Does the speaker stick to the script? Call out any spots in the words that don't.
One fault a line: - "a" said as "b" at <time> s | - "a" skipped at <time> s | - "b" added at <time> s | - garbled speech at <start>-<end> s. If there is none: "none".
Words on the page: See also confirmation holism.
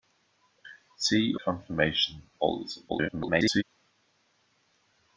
- "also" skipped at 1.4 s
- garbled speech at 2.9-3.6 s